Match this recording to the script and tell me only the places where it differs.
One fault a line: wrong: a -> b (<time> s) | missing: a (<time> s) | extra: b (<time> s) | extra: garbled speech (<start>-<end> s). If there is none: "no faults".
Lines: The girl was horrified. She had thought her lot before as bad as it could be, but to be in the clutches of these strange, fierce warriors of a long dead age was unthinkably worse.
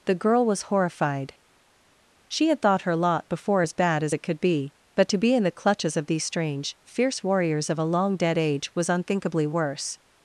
no faults